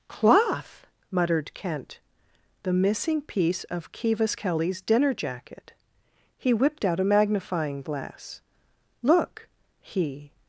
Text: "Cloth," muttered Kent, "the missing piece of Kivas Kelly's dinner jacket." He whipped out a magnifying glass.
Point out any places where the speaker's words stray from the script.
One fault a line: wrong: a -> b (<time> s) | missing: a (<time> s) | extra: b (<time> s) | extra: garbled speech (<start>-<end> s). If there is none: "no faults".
extra: Look he (9.0 s)